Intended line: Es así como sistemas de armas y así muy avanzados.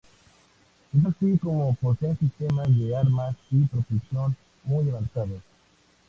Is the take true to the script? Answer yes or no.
no